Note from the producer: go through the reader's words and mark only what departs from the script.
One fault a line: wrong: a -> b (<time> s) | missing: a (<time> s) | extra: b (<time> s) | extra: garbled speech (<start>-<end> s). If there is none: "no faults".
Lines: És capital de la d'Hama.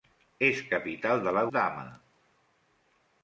no faults